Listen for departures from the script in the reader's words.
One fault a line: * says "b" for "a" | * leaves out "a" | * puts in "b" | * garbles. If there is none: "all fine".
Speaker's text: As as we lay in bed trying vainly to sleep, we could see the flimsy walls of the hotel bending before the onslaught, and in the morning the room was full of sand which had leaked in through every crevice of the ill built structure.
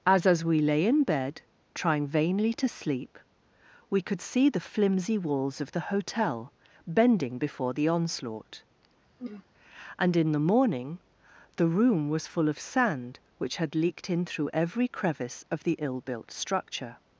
all fine